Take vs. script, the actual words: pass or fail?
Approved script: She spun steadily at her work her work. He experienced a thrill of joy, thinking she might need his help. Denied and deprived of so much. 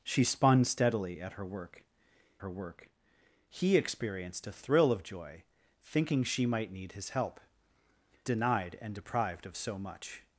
pass